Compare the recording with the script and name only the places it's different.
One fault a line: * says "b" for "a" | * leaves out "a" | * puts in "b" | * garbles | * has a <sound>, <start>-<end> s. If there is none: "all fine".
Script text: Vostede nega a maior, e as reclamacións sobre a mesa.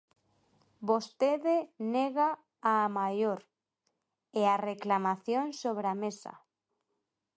all fine